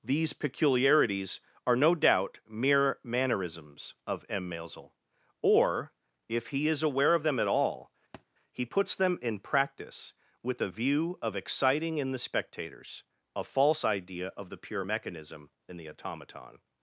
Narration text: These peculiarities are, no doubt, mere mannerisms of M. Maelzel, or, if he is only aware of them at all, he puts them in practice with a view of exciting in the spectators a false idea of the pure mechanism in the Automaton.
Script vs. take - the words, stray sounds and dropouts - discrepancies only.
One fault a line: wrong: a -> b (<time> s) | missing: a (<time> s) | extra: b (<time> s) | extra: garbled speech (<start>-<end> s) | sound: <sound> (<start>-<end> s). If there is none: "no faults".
missing: only (6.8 s)
sound: thud (8.1-8.3 s)